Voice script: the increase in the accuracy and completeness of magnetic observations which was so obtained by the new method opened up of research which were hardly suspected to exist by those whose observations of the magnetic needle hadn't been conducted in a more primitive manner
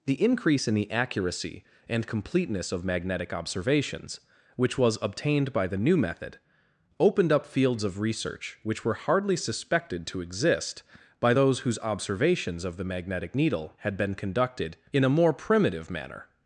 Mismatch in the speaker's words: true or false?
true